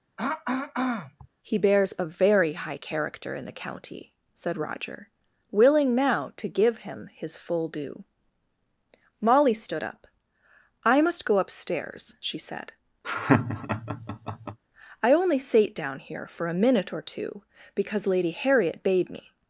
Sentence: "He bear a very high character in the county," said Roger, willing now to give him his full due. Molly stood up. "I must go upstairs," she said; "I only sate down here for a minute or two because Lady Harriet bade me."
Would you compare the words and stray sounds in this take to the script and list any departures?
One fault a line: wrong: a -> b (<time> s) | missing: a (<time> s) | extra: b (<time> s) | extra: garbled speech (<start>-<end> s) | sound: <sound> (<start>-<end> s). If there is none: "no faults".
sound: throat clearing (0.2-1.3 s)
wrong: bear -> bears (1.6 s)
sound: laugh (13.0-14.6 s)